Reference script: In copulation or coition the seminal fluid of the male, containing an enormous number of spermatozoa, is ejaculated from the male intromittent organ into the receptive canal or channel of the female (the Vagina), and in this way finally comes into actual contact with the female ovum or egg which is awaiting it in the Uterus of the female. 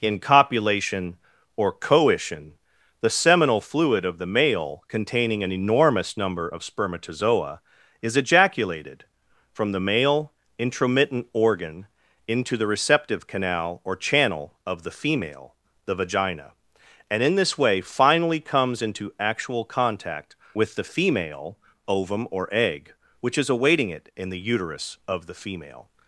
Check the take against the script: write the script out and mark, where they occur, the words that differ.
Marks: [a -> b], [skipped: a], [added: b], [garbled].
In copulation or coition the seminal fluid of the male, containing an enormous number of spermatozoa, is ejaculated from the male intromittent organ into the receptive canal or channel of the female (the Vagina), and in this way finally comes into actual contact with the female ovum or egg which is awaiting it in the Uterus of the female.